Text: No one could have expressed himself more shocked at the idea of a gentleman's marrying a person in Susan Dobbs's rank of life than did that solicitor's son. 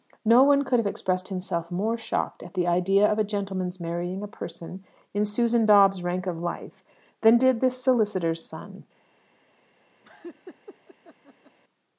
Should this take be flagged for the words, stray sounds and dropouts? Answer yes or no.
yes